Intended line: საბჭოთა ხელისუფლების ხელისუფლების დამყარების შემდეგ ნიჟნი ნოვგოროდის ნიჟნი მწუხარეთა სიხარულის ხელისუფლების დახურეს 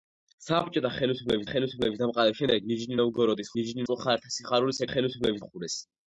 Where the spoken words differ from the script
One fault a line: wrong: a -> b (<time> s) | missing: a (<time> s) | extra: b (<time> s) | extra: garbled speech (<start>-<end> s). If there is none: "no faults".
no faults